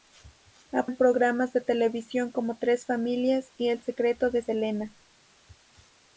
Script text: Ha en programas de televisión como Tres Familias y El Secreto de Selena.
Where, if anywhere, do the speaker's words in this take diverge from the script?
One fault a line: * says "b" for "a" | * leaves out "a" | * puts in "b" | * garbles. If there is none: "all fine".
all fine